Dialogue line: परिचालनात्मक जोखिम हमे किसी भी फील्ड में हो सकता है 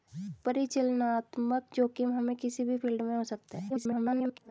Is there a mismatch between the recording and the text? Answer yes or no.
yes